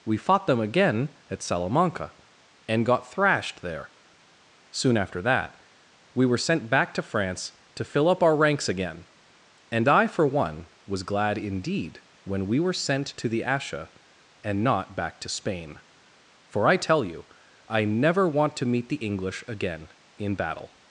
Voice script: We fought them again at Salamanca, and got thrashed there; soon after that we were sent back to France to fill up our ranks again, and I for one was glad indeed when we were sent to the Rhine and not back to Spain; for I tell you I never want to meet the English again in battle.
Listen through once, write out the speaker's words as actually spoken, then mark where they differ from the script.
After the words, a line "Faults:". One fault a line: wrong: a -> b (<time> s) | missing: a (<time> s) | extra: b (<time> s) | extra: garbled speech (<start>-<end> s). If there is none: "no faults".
We fought them again at Salamanca, and got thrashed there; soon after that we were sent back to France to fill up our ranks again, and I for one was glad indeed when we were sent to the Asha and not back to Spain; for I tell you I never want to meet the English again in battle.
Faults:
wrong: Rhine -> Asha (13.4 s)